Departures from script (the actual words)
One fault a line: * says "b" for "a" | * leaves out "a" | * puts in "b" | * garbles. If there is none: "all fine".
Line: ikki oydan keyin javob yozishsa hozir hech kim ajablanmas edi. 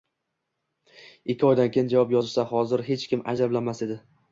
all fine